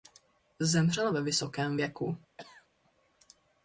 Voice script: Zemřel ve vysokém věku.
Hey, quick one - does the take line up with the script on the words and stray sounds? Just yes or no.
no